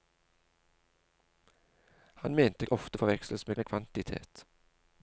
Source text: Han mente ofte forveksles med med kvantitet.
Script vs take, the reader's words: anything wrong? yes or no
no